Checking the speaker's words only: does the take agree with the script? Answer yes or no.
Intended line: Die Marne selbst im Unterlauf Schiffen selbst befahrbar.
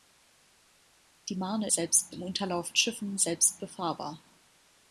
yes